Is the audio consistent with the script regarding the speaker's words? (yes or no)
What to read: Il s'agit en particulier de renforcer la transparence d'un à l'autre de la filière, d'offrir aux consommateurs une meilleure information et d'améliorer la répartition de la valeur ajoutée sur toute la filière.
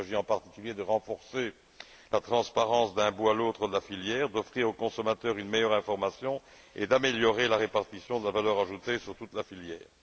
no